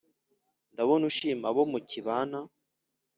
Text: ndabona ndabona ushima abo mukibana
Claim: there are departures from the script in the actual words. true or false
true